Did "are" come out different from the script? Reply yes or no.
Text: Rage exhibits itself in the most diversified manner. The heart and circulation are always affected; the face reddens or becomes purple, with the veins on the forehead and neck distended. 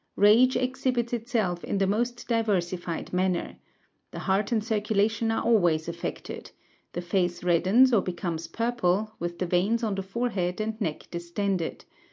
no